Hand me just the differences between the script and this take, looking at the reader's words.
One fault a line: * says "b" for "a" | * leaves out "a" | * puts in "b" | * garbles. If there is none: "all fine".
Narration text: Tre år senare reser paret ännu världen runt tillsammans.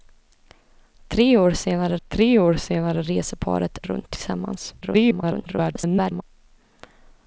* puts in "tre år senare"
* leaves out "ännu världen"
* garbles